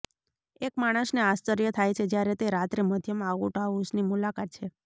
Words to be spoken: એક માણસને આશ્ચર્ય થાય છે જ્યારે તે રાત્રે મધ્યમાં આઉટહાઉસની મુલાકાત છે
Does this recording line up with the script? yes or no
yes